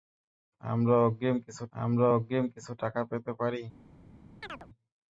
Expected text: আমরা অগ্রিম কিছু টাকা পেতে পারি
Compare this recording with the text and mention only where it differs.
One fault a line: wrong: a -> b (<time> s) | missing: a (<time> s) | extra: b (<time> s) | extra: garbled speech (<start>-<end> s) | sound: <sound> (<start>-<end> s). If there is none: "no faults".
extra: আমরা অগ্রিম কিছু (1.7 s)
sound: chirp (4.4-4.7 s)